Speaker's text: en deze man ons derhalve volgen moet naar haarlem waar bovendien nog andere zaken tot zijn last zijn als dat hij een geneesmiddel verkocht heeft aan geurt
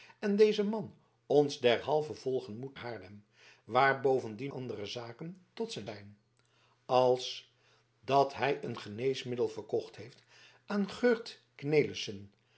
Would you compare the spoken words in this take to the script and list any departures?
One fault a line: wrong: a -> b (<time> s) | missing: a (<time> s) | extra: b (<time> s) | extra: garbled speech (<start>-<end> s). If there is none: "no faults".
missing: naar (2.8 s)
missing: nog (4.5 s)
missing: last (5.9 s)